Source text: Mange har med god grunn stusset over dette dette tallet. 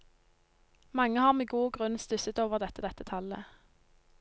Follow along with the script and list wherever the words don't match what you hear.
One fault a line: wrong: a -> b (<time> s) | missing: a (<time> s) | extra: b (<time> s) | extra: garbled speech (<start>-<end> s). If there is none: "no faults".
no faults